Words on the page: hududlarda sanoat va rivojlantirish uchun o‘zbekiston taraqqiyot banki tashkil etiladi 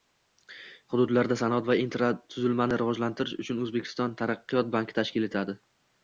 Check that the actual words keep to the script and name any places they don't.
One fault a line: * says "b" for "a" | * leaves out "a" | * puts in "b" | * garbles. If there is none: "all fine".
* puts in "infratuzilmani"